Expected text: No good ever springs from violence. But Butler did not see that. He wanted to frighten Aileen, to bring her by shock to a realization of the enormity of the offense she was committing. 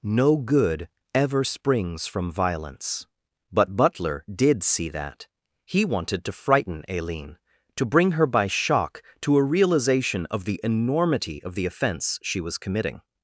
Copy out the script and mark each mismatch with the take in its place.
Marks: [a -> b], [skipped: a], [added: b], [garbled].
No good ever springs from violence. But Butler did [skipped: not] see that. He wanted to frighten Aileen, to bring her by shock to a realization of the enormity of the offense she was committing.